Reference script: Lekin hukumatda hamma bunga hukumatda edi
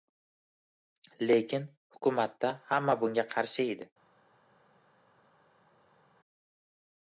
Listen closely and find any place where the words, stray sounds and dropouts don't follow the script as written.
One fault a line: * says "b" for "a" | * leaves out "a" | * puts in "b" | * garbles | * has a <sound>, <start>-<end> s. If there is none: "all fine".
* says "qarshi" for "hukumatda"